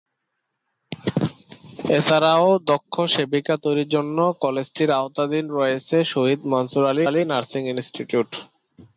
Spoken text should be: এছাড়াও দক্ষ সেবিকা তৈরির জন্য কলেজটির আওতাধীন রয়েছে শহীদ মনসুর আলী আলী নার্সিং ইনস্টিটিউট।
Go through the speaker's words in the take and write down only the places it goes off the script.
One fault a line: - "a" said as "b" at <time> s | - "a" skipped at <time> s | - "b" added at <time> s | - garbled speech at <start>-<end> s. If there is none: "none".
none